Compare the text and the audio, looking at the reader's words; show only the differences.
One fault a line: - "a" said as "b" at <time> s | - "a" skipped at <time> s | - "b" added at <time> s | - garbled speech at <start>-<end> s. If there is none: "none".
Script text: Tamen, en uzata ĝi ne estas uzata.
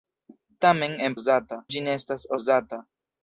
none